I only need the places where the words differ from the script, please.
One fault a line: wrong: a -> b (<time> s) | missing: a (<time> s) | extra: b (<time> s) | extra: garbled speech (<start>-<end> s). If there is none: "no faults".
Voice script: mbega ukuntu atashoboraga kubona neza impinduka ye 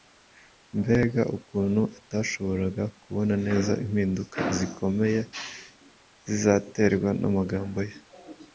extra: zikomeye zizaterwa n'amagambo (4.6 s)